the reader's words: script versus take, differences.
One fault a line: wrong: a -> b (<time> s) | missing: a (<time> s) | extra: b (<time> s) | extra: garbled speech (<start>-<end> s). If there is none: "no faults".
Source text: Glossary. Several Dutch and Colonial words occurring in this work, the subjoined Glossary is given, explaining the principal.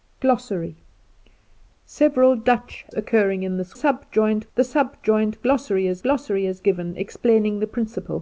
missing: and Colonial words (2.9 s)
wrong: work -> subjoined (3.7 s)
extra: Glossary is (6.0 s)